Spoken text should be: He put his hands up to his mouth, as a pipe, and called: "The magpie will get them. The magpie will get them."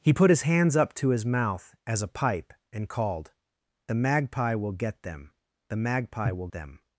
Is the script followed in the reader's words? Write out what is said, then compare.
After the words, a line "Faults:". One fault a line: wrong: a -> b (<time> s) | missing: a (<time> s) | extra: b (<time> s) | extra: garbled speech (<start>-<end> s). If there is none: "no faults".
He put his hands up to his mouth, as a pipe, and called: "The magpie will get them. The magpie will them."
Faults:
missing: get (6.5 s)